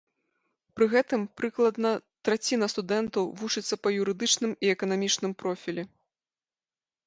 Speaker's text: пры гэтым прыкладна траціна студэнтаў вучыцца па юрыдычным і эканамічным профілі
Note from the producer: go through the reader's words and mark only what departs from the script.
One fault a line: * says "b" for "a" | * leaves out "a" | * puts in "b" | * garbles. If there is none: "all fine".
all fine